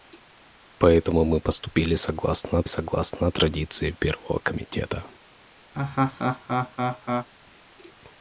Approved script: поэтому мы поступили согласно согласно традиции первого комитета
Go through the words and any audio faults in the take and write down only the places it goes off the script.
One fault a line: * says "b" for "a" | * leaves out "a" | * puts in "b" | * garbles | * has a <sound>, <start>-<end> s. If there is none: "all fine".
* has a laugh, 5.7-7.3 s